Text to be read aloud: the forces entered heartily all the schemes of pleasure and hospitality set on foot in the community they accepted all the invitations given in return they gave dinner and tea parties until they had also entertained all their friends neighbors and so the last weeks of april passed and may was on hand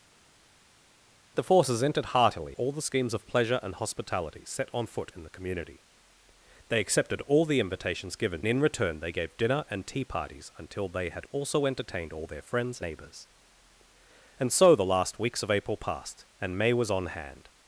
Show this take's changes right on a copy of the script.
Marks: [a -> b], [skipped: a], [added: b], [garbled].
the forces entered heartily all the schemes of pleasure and hospitality set on foot in the community they accepted all the invitations given in return they gave dinner and tea parties until they had also entertained all their friends neighbors and so the last weeks of april passed and may was on hand